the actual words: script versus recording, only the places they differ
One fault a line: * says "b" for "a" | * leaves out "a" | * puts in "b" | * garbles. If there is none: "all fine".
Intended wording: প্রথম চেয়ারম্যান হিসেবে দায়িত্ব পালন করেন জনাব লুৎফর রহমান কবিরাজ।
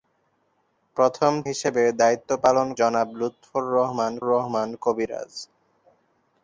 * leaves out "চেয়ারম্যান"
* leaves out "করেন"
* puts in "রহমান"